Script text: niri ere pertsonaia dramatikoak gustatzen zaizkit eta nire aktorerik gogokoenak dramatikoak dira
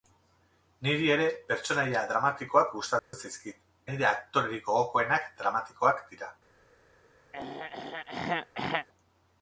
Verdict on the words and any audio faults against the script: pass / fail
fail